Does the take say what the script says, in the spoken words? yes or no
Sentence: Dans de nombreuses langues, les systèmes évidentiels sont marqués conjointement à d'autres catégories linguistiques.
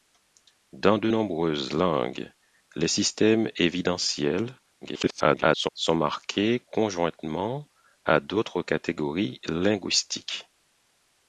no